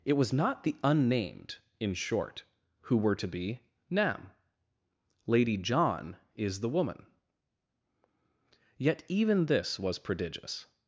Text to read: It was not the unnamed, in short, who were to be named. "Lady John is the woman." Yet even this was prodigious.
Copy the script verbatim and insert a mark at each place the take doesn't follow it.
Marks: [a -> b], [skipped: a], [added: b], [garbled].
It was not the unnamed, in short, who were to be [named. -> nam] "Lady John is the woman." Yet even this was prodigious.